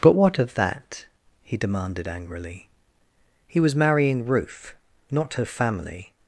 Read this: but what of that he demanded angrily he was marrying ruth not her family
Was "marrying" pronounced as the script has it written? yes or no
yes